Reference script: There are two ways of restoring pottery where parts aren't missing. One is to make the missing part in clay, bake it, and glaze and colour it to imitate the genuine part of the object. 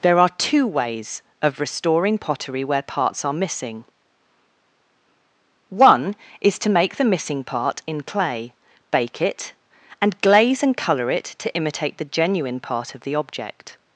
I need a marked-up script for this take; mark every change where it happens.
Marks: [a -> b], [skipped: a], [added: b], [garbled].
There are two ways of restoring pottery where parts [aren't -> are] missing. One is to make the missing part in clay, bake it, and glaze and colour it to imitate the genuine part of the object.